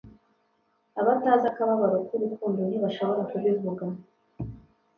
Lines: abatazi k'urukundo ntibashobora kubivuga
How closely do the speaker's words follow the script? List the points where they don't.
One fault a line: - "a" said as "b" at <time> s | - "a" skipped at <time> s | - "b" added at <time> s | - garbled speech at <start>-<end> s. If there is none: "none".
- "akababaro" added at 1.5 s